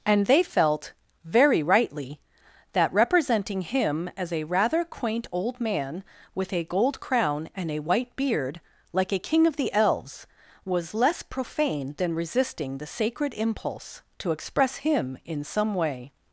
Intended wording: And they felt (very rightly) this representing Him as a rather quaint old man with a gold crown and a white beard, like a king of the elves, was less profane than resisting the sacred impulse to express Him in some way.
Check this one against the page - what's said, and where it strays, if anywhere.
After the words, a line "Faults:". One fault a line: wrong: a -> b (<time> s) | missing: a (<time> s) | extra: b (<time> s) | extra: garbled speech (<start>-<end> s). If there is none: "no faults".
And they felt (very rightly) that representing Him as a rather quaint old man with a gold crown and a white beard, like a king of the elves, was less profane than resisting the sacred impulse to express Him in some way.
Faults:
wrong: this -> that (2.7 s)